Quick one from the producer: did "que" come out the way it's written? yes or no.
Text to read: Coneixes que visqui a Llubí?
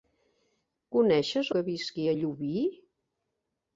yes